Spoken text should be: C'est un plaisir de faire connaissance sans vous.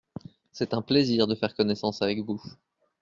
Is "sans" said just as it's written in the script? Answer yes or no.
no